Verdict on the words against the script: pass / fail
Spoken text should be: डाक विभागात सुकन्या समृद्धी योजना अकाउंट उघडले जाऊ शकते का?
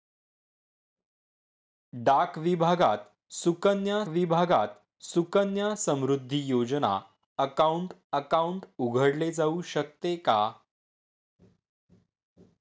fail